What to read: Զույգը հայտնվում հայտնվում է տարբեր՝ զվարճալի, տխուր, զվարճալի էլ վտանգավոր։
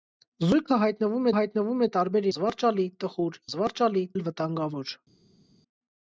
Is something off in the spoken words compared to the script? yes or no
no